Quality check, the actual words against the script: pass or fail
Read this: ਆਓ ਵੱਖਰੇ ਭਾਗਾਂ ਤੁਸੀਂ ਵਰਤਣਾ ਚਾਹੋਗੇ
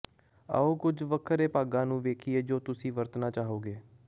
fail